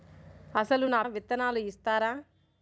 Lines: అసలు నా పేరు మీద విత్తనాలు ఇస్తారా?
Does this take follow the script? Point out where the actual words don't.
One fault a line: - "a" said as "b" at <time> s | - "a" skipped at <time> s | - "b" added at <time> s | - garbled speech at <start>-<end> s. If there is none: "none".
- "పేరు మీద" skipped at 1.0 s